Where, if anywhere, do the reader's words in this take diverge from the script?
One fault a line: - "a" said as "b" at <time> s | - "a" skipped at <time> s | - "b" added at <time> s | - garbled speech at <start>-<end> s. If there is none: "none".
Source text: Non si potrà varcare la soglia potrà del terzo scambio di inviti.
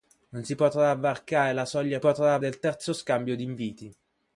none